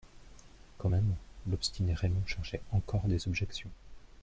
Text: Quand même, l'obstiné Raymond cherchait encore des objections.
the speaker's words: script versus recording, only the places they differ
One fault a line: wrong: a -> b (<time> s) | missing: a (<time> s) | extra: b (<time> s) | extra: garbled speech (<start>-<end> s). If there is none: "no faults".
no faults